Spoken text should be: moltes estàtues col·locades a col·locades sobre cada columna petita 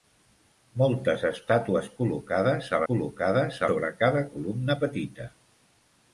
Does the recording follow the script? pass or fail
pass